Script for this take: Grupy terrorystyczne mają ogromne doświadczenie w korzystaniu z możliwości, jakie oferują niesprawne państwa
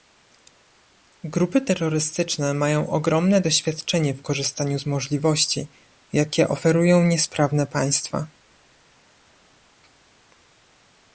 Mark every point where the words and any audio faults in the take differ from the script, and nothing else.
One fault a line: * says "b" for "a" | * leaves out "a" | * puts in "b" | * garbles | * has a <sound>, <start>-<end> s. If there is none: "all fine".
all fine